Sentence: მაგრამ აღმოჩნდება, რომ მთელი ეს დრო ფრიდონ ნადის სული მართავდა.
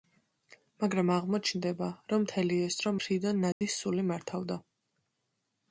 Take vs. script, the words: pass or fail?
pass